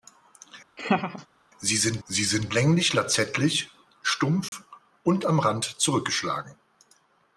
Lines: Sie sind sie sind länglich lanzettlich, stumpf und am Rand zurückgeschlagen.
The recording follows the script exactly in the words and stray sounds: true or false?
false